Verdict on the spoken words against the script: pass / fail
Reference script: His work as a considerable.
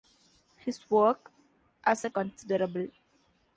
pass